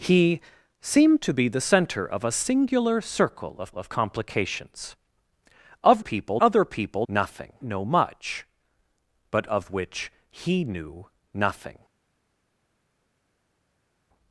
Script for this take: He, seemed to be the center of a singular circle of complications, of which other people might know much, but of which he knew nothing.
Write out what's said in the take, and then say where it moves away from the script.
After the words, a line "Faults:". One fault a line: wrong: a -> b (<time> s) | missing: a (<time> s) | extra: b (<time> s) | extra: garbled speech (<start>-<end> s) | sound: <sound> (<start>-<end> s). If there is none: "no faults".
He, seemed to be the center of a singular circle of of complications, of people other people nothing know much, but of which he knew nothing.
Faults:
extra: of (3.8 s)
wrong: which -> people (6.0 s)
wrong: might -> nothing (7.1 s)